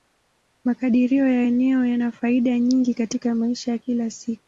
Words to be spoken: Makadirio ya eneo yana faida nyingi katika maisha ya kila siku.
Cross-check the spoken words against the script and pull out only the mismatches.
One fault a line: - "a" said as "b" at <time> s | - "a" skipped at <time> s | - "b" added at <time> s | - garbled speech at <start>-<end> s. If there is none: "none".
none